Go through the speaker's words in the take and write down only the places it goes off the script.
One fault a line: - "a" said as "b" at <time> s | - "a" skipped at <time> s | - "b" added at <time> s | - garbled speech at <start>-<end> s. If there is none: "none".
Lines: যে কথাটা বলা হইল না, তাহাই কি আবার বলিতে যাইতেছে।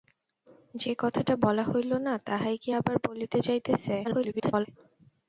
- garbled speech at 4.0-4.7 s